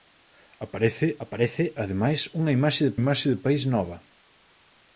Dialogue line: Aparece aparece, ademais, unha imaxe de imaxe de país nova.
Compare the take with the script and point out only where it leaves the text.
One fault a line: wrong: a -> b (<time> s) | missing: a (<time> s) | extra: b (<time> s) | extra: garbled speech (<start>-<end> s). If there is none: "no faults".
no faults